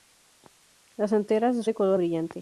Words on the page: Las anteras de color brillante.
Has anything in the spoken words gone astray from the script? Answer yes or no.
no